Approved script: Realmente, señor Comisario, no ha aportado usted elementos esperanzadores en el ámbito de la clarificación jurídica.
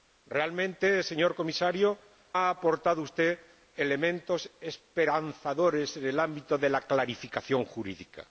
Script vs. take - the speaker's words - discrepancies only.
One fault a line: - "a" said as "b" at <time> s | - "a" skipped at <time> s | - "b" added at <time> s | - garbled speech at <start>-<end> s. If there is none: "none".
- "no" skipped at 2.0 s